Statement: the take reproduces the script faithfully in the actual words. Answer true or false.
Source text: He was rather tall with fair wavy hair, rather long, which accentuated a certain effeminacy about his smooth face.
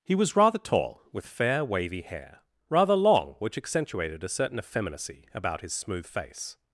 true